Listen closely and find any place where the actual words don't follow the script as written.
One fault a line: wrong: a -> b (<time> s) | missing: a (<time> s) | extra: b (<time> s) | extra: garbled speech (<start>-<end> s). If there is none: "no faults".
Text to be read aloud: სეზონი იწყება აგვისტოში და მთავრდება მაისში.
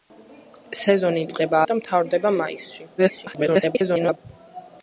missing: აგვისტოში (1.6 s)
extra: garbled speech (3.0-4.2 s)